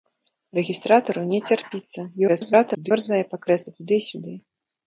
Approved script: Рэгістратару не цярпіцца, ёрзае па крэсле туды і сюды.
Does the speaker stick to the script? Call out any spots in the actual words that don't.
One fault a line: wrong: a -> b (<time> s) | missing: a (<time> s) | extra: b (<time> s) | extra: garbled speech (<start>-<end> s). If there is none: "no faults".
extra: garbled speech (2.3-2.9 s)